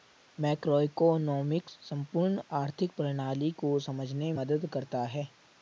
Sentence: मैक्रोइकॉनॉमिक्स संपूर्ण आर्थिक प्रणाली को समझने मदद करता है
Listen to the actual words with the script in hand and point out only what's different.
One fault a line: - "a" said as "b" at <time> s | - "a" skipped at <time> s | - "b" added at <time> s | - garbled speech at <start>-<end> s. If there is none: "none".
none